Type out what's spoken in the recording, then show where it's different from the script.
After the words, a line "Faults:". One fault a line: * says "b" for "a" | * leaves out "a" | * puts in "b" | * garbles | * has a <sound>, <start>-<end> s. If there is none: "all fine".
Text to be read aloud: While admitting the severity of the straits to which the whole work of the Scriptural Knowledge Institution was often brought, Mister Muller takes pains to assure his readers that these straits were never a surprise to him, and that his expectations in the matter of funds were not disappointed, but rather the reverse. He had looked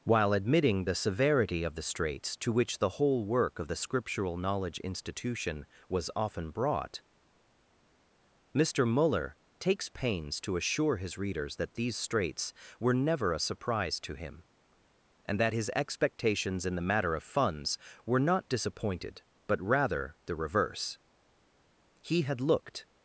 While admitting the severity of the straits to which the whole work of the Scriptural Knowledge Institution was often brought, Mister Muller takes pains to assure his readers that these straits were never a surprise to him, and that his expectations in the matter of funds were not disappointed, but rather the reverse. He had looked
Faults:
all fine